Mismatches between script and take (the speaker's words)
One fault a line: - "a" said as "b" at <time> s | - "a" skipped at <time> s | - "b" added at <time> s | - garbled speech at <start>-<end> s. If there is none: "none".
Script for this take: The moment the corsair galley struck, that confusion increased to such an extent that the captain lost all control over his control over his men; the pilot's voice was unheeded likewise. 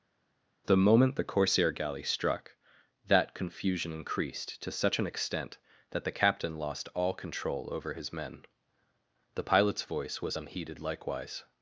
- "control over his" skipped at 8.1 s